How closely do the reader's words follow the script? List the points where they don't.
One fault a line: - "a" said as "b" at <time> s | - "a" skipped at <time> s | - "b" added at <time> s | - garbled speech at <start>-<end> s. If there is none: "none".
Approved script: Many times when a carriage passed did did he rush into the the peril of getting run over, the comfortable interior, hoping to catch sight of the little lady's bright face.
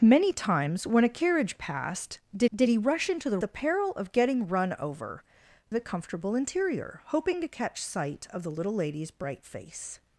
none